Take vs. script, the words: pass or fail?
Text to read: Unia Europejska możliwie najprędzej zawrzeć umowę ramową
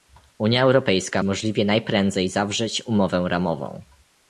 pass